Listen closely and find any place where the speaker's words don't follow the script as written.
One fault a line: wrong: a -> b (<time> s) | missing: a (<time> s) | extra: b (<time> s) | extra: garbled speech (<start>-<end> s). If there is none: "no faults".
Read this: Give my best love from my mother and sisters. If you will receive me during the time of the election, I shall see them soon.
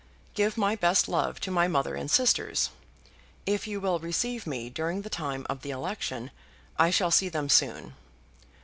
wrong: from -> to (1.4 s)